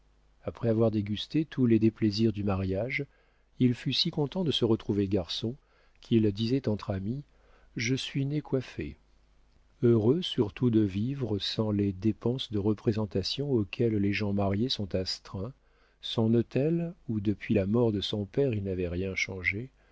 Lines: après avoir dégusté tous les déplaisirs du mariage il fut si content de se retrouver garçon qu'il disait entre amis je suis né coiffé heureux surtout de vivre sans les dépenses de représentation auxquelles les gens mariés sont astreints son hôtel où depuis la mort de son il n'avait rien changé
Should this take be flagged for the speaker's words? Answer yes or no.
yes